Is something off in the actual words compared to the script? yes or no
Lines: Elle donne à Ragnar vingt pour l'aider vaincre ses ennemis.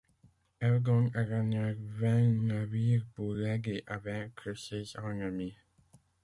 yes